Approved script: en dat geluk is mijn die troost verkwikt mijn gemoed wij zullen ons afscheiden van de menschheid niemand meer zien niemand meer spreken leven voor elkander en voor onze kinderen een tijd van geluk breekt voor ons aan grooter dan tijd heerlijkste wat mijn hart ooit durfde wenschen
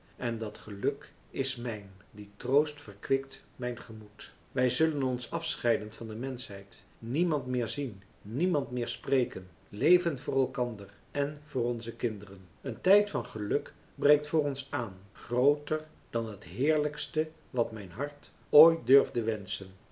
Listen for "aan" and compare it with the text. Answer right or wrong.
right